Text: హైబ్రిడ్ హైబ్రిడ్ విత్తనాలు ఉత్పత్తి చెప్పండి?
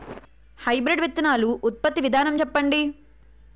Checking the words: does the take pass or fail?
fail